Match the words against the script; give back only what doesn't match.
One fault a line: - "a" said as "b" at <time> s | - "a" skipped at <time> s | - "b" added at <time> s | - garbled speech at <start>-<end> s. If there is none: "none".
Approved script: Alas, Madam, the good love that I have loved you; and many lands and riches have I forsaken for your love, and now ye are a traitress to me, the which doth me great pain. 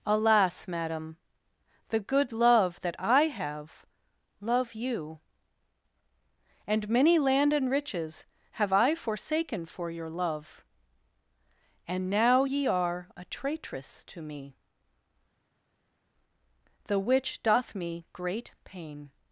- "loved" said as "love" at 4.4 s
- "lands" said as "land" at 7.2 s